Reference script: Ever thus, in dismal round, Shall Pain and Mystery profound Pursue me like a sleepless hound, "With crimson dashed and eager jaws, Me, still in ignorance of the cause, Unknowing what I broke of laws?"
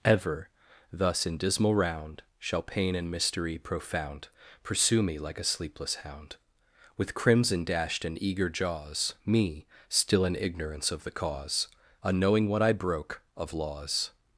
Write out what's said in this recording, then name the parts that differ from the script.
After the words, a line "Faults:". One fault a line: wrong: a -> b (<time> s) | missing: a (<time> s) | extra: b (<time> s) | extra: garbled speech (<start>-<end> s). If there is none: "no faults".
Ever thus, in dismal round, Shall Pain and Mystery profound Pursue me like a sleepless hound, "With crimson dashed and eager jaws, Me, still in ignorance of the cause, Unknowing what I broke of laws?"
Faults:
no faults